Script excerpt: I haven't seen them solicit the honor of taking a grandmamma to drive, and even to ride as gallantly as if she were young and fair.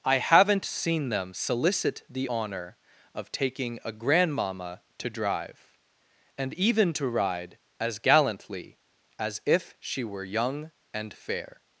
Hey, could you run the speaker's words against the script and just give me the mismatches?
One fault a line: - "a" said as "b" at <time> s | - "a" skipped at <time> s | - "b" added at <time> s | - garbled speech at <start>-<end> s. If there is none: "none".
none